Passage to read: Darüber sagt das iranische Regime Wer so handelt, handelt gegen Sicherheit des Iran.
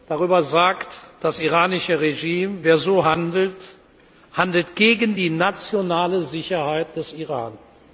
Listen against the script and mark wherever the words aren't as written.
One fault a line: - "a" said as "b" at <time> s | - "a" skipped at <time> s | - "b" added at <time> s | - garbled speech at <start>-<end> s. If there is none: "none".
- "die nationale" added at 5.2 s